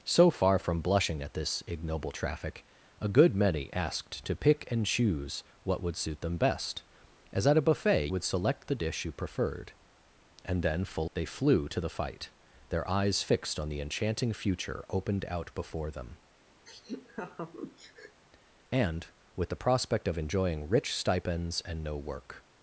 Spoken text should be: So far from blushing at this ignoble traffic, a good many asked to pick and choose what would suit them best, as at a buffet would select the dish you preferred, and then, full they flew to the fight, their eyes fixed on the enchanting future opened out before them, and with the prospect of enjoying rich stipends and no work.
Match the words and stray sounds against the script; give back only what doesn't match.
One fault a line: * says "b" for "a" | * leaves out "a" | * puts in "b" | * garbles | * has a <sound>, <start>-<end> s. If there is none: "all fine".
* has a laugh, 16.7-18.2 s